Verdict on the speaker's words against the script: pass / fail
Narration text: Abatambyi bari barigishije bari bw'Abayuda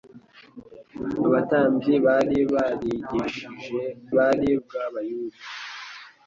pass